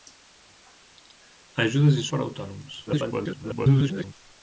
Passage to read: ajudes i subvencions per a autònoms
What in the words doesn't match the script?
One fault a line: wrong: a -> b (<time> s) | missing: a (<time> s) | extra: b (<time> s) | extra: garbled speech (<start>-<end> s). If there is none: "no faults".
missing: subvencions (2.1 s)
extra: garbled speech (2.9-4.1 s)